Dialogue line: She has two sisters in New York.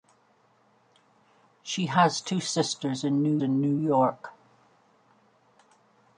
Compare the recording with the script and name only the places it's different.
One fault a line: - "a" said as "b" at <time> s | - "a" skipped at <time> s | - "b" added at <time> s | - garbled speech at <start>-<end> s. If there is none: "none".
- "in New" added at 3.4 s